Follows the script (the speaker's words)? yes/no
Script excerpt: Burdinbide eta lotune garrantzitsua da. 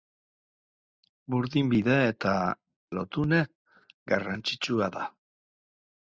yes